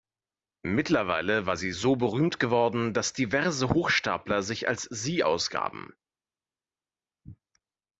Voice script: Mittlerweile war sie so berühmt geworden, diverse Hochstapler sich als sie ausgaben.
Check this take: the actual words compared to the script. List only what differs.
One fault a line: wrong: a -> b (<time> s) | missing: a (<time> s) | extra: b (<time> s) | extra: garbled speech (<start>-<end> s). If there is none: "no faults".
extra: dass (2.9 s)